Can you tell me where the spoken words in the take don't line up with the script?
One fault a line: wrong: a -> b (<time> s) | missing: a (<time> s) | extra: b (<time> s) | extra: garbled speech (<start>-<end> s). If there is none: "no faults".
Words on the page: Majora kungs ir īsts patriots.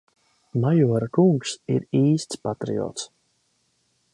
no faults